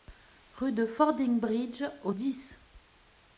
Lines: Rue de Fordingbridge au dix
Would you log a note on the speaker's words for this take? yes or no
no